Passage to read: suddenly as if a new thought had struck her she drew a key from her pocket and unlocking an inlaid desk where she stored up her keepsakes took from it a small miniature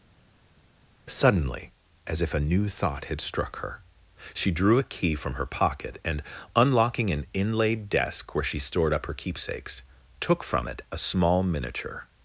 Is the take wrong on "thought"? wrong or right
right